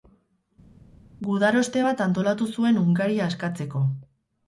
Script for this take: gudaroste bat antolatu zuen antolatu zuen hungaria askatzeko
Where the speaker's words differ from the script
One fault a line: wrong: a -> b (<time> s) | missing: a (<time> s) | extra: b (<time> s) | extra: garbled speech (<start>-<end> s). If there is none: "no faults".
missing: antolatu zuen (2.8 s)